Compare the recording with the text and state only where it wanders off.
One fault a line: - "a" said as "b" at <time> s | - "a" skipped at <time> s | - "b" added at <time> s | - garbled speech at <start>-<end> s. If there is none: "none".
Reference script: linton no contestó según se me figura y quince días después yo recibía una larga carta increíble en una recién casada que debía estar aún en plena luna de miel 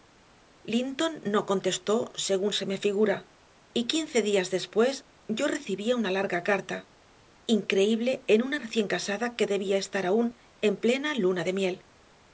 none